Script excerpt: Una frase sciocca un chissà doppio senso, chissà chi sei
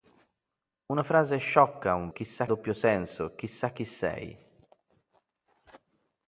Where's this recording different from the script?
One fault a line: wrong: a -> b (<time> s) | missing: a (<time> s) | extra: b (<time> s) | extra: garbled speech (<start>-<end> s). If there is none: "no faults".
no faults